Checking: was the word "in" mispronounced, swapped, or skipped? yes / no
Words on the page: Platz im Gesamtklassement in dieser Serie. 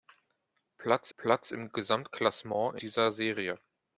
yes